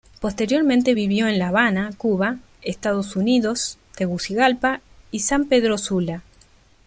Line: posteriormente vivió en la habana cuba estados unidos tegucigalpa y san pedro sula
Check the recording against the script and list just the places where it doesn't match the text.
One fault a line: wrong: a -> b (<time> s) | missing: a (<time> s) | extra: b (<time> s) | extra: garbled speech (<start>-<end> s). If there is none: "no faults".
no faults